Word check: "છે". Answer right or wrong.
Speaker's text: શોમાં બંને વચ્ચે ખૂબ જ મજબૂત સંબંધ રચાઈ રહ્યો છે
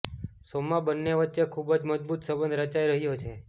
right